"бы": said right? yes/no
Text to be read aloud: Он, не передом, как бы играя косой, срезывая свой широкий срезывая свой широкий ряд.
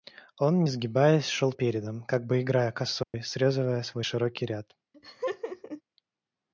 yes